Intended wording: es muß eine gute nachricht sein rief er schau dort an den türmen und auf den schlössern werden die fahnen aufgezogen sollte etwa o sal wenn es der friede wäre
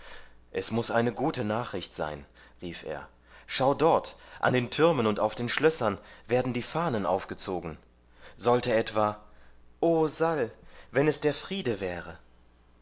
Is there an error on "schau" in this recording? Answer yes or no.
no